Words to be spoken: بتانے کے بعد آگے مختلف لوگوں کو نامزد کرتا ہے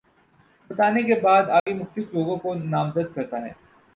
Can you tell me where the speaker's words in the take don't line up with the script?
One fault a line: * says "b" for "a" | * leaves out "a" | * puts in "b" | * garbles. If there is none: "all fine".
all fine